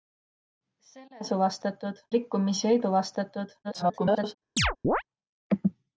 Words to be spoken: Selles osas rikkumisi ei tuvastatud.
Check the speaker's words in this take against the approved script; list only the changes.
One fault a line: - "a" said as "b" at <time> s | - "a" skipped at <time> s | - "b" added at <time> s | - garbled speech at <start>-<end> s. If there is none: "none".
- "osas" said as "tuvastatud" at 1.3 s
- garbled speech at 3.6-4.3 s